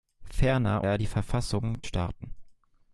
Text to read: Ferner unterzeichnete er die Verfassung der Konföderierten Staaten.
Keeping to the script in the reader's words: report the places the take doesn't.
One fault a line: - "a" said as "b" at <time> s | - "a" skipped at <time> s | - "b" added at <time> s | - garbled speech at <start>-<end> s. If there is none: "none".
- "unterzeichnete" skipped at 0.8 s
- "der Konföderierten" skipped at 1.8 s